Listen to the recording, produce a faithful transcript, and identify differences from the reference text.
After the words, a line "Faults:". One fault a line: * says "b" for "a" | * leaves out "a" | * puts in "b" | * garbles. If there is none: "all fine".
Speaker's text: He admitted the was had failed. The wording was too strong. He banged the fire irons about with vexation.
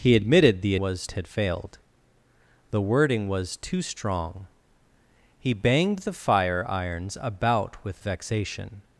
He admitted the was had failed. The wording was too strong. He banged the fire irons about with vexation.
Faults:
all fine